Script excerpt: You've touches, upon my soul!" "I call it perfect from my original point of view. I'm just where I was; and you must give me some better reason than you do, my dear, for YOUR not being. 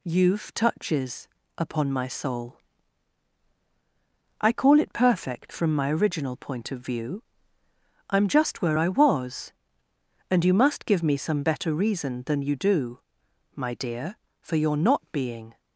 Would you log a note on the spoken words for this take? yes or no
no